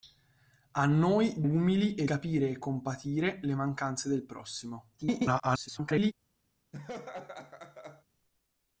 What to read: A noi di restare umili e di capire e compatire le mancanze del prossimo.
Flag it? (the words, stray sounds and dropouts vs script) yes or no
yes